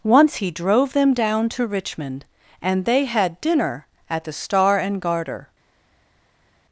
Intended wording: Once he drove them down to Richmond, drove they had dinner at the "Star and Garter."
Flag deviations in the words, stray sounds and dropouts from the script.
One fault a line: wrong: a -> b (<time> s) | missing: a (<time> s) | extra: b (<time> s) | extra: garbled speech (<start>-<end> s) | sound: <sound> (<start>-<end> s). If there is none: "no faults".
wrong: drove -> and (2.6 s)